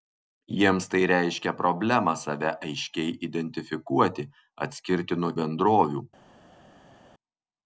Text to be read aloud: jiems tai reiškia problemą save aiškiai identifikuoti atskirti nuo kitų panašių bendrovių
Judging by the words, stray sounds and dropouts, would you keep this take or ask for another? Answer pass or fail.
fail